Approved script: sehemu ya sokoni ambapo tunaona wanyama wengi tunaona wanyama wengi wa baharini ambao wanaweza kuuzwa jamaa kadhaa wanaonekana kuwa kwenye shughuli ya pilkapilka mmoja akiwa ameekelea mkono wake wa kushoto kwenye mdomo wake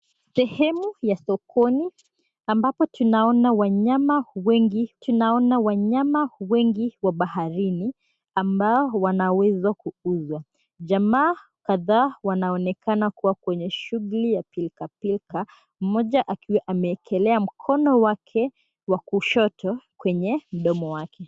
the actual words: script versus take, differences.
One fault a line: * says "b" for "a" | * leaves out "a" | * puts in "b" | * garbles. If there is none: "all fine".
all fine